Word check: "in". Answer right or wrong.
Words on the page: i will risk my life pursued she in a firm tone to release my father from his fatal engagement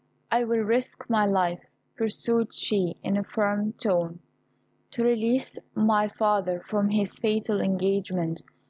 right